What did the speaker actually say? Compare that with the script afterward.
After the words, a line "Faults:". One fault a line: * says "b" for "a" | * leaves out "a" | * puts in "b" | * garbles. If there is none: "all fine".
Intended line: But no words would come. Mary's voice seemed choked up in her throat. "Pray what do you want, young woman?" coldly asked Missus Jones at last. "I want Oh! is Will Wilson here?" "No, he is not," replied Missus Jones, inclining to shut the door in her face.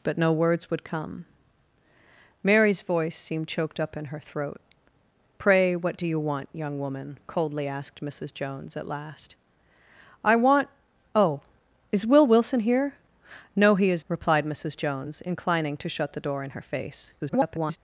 But no words would come. Mary's voice seemed choked up in her throat. "Pray what do you want, young woman?" coldly asked Missus Jones at last. "I want Oh! is Will Wilson here?" "No, he is," replied Missus Jones, inclining to shut the door in her face. [garbled]
Faults:
* leaves out "not"
* garbles